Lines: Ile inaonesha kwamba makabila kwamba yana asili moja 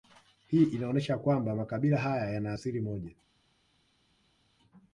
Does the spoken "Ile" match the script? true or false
false